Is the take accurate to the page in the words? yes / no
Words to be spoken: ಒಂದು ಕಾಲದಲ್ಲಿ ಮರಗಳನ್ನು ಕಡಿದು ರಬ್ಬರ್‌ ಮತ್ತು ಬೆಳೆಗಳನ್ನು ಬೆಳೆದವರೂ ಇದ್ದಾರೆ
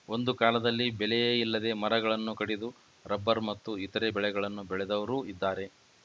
no